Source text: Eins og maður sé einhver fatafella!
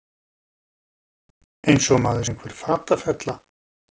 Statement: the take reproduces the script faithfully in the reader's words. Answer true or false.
false